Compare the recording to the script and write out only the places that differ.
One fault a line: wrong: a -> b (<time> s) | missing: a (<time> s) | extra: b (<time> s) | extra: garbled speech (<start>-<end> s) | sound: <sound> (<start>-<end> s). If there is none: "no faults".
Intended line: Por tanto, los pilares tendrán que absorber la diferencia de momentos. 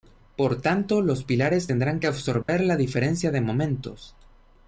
sound: dropout (2.4-2.5 s)